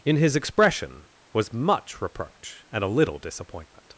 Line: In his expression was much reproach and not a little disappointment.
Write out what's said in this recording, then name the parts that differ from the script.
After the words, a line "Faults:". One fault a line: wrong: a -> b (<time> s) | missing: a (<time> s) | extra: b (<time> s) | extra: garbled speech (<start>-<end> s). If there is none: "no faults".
In his expression was much reproach and a little disappointment.
Faults:
missing: not (2.8 s)